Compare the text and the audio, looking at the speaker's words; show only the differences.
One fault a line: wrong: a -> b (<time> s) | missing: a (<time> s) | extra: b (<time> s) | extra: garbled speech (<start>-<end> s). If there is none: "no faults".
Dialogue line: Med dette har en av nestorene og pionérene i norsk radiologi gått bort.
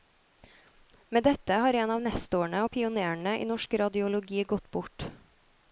no faults